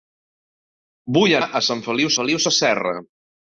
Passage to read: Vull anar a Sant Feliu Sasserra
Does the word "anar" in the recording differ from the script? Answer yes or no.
yes